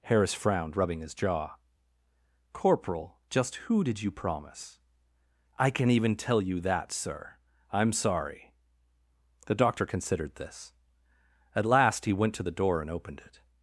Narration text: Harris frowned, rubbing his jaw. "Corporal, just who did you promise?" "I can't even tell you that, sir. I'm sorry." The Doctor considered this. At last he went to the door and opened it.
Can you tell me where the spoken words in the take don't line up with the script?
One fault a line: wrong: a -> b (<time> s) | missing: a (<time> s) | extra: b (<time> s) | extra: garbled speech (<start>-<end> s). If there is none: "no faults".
wrong: can't -> can (5.7 s)